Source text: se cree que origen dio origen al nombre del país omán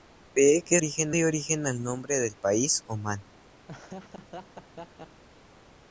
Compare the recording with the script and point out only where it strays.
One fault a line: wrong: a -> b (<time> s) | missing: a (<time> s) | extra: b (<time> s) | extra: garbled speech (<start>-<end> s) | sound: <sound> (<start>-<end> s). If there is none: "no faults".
sound: laugh (3.7-5.2 s)